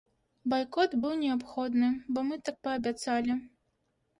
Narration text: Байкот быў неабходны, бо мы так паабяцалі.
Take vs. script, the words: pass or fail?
pass